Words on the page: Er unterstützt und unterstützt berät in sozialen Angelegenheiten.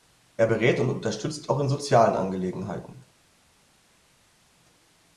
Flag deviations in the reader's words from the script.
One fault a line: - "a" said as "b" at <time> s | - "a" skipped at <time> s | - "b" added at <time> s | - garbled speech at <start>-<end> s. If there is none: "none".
- "unterstützt" said as "berät" at 0.5 s
- "berät" said as "auch" at 1.5 s